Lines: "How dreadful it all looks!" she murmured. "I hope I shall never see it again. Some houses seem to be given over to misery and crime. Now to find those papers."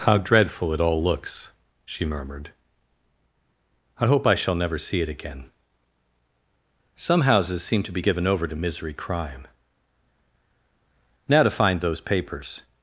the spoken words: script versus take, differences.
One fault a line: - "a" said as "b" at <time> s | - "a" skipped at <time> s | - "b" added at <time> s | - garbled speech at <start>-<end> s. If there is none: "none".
- "and" skipped at 8.9 s